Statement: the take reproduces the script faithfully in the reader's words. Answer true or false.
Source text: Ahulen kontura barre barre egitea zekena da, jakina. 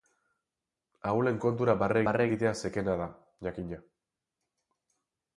true